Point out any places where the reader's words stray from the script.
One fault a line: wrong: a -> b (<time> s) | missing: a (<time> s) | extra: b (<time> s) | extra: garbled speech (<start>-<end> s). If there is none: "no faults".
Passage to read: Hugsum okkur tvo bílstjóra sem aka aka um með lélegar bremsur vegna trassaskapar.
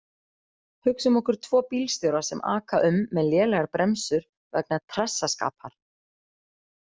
missing: aka (2.8 s)